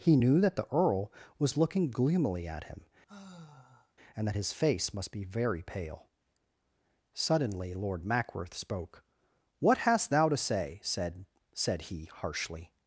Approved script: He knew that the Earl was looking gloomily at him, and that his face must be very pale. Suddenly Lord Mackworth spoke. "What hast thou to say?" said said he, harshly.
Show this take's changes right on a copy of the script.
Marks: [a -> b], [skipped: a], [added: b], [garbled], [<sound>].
He knew that the Earl was looking gloomily at him, [sigh] and that his face must be very pale. Suddenly Lord Mackworth spoke. "What hast thou to say?" said said he, harshly.